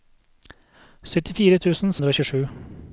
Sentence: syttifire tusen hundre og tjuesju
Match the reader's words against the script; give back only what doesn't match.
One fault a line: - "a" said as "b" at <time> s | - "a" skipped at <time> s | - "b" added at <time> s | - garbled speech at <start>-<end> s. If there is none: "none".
none